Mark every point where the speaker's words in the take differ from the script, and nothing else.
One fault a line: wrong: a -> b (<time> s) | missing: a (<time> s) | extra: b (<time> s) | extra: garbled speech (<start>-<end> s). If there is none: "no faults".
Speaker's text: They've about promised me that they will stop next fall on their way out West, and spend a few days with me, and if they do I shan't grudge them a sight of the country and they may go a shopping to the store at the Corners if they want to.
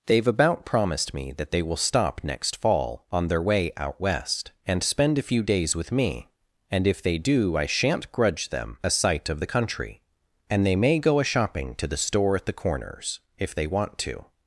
no faults